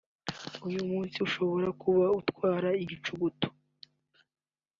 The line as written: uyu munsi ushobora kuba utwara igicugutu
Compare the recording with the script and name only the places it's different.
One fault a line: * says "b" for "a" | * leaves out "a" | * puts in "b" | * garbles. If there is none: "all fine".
all fine